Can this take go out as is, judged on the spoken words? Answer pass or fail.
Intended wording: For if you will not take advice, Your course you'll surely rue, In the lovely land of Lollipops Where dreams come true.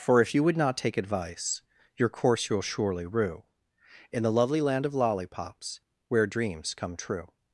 fail